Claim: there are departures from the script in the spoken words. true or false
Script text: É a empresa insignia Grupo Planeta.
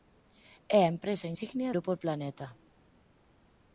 false